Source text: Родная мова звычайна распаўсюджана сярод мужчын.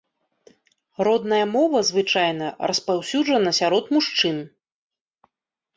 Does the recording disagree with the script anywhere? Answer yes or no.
no